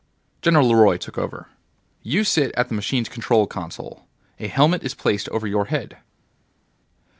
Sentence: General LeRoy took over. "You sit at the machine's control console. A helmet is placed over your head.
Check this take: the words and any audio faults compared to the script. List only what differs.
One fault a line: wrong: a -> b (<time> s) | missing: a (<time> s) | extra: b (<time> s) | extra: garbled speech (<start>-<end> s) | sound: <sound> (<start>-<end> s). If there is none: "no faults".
no faults